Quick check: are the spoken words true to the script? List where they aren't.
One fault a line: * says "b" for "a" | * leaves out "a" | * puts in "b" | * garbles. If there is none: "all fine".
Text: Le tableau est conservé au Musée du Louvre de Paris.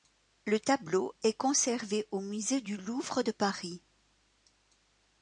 all fine